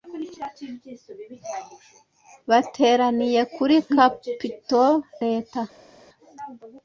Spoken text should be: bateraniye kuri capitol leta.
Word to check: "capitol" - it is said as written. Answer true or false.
true